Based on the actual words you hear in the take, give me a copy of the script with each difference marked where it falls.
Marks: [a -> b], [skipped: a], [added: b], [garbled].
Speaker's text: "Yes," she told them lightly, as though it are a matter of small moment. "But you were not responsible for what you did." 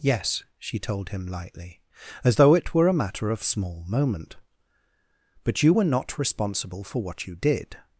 "Yes," she told [them -> him] lightly, as though it [are -> were] a matter of small moment. "But you were not responsible for what you did."